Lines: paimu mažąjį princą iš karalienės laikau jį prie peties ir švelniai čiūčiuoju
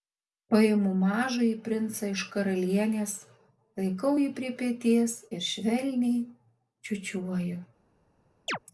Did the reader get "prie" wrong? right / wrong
right